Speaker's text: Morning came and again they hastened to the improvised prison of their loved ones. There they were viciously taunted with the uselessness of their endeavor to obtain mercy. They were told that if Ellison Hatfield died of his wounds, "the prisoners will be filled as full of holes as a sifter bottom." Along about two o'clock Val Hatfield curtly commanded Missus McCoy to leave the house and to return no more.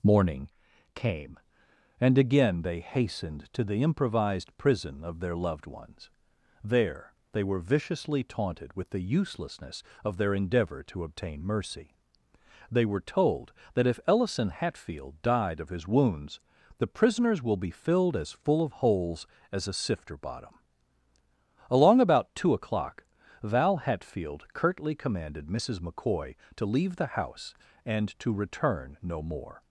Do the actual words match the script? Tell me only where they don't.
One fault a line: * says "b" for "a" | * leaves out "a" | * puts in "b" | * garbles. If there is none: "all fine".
all fine